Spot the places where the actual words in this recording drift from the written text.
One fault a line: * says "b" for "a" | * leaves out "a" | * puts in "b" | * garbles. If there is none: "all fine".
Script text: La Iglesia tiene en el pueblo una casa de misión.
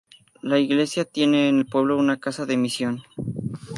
all fine